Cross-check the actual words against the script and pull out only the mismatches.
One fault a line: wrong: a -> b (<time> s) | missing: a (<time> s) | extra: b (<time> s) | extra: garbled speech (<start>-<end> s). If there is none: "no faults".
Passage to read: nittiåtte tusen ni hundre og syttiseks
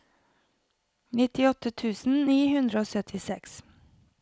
no faults